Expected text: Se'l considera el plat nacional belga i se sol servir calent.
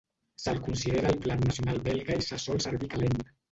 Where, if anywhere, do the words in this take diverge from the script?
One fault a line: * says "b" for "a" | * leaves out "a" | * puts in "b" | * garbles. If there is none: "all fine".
all fine